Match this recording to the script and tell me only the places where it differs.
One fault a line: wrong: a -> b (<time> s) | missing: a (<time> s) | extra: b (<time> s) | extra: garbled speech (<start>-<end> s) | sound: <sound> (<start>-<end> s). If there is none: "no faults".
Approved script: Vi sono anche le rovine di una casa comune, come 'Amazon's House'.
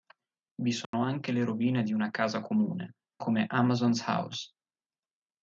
sound: dropout (0.8-0.9 s)